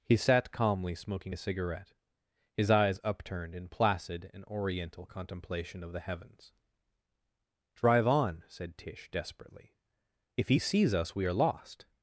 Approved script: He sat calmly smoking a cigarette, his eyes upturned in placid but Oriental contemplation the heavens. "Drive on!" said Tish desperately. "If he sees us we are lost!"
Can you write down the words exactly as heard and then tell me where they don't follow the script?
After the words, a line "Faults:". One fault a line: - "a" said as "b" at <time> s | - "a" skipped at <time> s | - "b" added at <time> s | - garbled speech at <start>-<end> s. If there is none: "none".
He sat calmly smoking a cigarette, his eyes upturned in placid and Oriental contemplation of the heavens. "Drive on!" said Tish desperately. "If he sees us we are lost!"
Faults:
- "but" said as "and" at 4.3 s
- "of" added at 5.8 s